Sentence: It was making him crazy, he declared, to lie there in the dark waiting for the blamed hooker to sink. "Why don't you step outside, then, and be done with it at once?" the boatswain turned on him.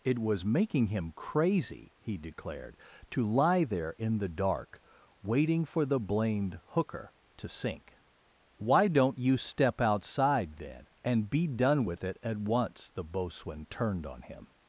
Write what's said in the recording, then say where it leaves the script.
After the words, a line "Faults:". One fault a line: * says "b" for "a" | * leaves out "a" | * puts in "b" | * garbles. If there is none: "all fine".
It was making him crazy, he declared, to lie there in the dark waiting for the blamed hooker to sink. "Why don't you step outside, then, and be done with it at once?" the boatswain turned on him.
Faults:
all fine